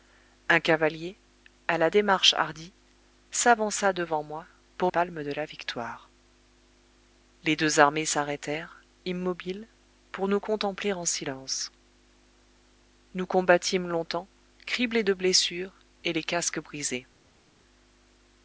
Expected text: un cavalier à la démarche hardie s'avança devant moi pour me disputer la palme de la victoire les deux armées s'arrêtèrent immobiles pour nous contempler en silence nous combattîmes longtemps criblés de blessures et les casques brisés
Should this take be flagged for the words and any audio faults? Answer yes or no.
yes